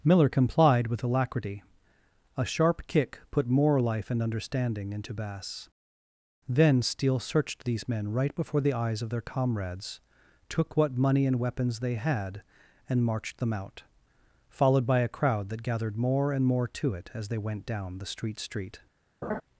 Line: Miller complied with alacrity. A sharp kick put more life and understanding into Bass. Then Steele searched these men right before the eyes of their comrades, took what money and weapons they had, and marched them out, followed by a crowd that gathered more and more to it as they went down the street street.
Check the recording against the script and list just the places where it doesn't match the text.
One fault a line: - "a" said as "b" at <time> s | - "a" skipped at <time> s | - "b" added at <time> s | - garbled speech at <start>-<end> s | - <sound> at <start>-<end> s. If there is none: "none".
- laugh at 19.2-19.4 s